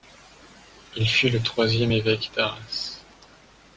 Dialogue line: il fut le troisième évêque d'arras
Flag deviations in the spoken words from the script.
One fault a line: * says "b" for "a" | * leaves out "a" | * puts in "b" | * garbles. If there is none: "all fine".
all fine